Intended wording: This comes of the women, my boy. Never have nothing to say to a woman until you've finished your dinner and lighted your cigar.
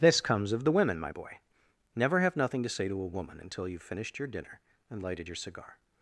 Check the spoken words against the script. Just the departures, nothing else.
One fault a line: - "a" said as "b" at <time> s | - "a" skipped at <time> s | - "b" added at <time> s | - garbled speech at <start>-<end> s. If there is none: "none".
none